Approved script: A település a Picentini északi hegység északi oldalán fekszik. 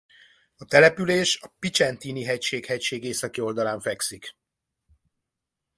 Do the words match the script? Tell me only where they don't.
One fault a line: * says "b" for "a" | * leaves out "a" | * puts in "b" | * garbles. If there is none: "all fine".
* says "hegység" for "északi"